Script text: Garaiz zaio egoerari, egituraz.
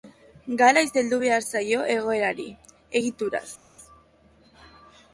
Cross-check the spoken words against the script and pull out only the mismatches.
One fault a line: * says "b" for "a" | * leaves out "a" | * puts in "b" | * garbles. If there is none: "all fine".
* puts in "heldu behar"